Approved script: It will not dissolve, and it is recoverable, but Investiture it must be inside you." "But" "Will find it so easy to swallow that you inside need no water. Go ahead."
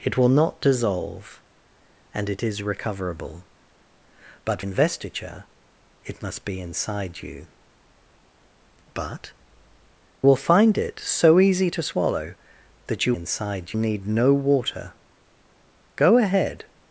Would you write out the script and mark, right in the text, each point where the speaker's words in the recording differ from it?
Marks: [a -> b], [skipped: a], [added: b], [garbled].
It will not dissolve, and it is recoverable, but Investiture it must be inside you." "But" "Will find it so easy to swallow that you inside need no water. Go ahead."